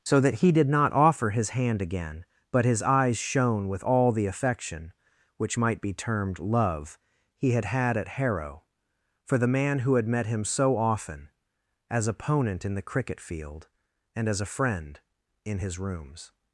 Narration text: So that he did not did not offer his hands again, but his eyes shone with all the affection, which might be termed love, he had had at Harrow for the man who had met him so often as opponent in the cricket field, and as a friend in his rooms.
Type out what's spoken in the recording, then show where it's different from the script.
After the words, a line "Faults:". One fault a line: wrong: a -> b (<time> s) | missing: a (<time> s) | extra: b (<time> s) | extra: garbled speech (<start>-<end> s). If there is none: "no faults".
So that he did not offer his hand again, but his eyes shone with all the affection, which might be termed love, he had had at Harrow for the man who had met him so often as opponent in the cricket field, and as a friend in his rooms.
Faults:
missing: did not (0.9 s)
wrong: hands -> hand (1.5 s)